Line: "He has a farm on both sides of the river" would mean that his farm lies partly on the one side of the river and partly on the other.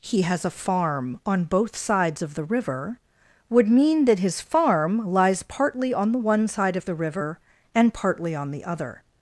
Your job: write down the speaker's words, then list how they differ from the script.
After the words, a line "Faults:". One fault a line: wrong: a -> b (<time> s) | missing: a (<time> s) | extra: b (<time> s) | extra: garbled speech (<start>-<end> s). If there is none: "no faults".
"He has a farm on both sides of the river" would mean that his farm lies partly on the one side of the river and partly on the other.
Faults:
no faults